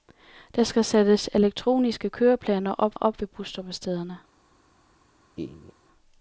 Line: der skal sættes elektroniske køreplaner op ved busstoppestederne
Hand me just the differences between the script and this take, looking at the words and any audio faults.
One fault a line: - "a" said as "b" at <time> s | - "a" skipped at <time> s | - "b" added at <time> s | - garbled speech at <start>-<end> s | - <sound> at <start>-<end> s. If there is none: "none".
- "op" added at 2.9 s
- laugh at 5.4-5.7 s